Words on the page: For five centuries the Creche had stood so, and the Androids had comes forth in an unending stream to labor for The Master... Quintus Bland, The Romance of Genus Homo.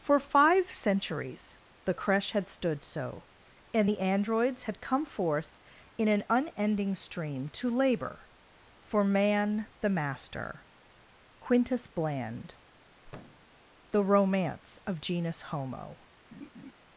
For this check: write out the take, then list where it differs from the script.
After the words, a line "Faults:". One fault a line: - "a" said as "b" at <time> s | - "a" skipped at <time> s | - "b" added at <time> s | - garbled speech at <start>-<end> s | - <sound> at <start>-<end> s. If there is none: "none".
For five centuries the Creche had stood so, and the Androids had come forth in an unending stream to labor for Man, the Master... Quintus Bland, The Romance of Genus Homo.
Faults:
- "comes" said as "come" at 4.8 s
- "Man" added at 9.0 s
- thud at 13.0-13.6 s
- laugh at 16.3-16.7 s